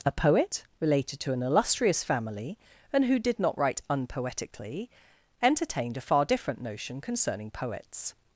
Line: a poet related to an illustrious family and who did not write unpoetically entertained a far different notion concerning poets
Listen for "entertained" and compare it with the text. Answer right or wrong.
right